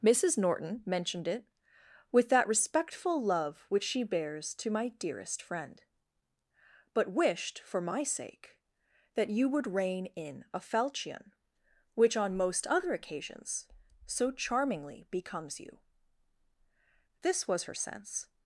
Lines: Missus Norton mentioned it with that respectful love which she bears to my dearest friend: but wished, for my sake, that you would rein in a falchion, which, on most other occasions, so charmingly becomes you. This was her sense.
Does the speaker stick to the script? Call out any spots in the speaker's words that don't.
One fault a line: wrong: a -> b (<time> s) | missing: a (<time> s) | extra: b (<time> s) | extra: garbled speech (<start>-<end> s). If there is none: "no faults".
no faults